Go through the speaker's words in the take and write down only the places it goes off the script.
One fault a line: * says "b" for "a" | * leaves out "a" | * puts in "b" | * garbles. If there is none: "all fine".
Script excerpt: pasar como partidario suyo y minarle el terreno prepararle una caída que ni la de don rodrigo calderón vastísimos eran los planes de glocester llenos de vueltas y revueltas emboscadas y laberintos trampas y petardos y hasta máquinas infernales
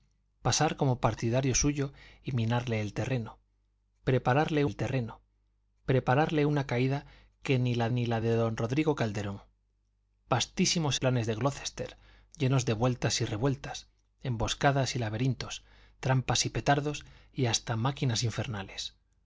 * puts in "el terreno prepararle"
* puts in "ni la"
* leaves out "eran los"